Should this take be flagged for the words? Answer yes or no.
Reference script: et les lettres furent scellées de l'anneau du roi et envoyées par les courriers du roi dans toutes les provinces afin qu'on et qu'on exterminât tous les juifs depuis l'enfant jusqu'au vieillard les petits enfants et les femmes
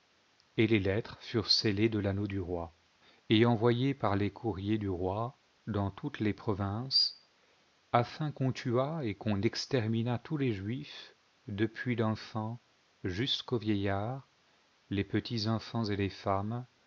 yes